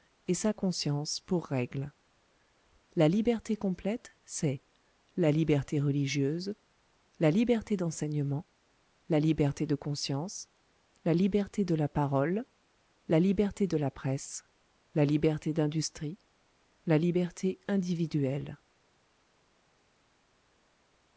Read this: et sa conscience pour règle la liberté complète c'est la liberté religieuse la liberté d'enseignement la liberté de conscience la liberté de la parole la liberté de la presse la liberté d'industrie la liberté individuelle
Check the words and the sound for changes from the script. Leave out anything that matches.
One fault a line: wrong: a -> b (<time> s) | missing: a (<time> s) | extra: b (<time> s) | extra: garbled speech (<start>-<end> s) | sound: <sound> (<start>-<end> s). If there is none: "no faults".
no faults